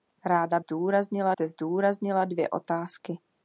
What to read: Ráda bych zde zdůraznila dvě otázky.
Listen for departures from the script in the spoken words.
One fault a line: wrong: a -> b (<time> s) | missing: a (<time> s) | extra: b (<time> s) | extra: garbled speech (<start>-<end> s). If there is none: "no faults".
wrong: bych -> zdůraznila (0.6 s)